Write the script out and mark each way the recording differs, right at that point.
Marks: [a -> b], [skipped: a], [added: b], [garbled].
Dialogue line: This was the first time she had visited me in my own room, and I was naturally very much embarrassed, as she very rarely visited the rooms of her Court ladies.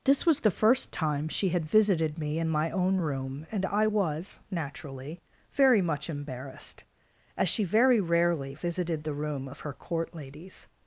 This was the first time she had visited me in my own room, and I was naturally very much embarrassed, as she very rarely visited the [rooms -> room] of her Court ladies.